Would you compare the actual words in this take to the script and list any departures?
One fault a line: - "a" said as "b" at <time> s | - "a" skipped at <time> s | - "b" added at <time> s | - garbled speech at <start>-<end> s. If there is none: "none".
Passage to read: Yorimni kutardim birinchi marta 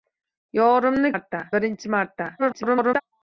- "kutardim" said as "marta" at 1.1 s
- garbled speech at 2.4-3.0 s